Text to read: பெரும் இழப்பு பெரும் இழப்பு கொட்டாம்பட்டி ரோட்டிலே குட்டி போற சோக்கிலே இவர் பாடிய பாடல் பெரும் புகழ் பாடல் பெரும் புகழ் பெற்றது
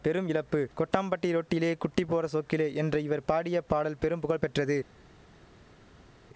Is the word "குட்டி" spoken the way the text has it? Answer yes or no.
yes